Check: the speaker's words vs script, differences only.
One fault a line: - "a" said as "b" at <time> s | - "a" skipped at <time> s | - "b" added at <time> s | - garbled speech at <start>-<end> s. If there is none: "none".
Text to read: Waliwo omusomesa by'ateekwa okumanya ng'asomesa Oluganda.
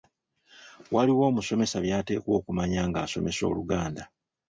none